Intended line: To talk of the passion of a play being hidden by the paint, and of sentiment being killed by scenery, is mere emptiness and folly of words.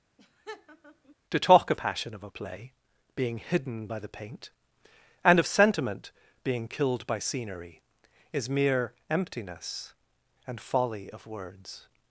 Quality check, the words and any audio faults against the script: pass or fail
fail